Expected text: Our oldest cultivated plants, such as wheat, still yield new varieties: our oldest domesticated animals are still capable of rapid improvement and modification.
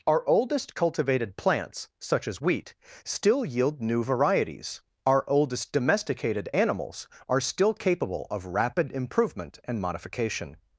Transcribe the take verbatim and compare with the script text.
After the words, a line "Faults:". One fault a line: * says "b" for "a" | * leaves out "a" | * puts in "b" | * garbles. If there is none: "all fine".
Our oldest cultivated plants, such as wheat, still yield new varieties: our oldest domesticated animals are still capable of rapid improvement and modification.
Faults:
all fine